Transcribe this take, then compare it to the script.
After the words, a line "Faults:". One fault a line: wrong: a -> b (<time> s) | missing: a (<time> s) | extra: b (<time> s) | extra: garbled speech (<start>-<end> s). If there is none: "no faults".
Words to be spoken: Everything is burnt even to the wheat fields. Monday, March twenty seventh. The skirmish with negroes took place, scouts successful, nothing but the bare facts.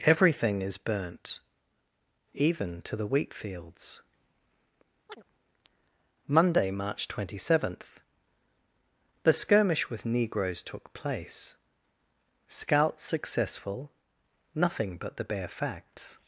Everything is burnt even to the wheat fields. Monday, March twenty seventh. The skirmish with negroes took place, scouts successful, nothing but the bare facts.
Faults:
no faults